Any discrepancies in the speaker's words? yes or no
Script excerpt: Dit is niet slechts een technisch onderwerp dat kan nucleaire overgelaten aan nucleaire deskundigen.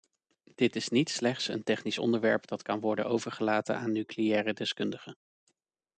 yes